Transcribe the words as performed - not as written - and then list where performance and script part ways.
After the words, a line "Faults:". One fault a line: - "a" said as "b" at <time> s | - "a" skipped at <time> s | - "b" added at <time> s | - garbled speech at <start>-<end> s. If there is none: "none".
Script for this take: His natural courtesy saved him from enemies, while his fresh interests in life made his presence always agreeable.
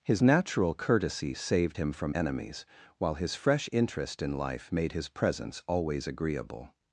His natural courtesy saved him from enemies, while his fresh interest in life made his presence always agreeable.
Faults:
- "interests" said as "interest" at 3.7 s